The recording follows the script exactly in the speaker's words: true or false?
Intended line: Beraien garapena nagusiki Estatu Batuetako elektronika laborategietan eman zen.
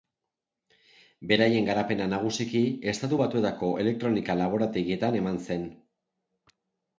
true